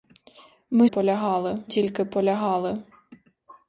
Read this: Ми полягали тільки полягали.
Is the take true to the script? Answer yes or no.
yes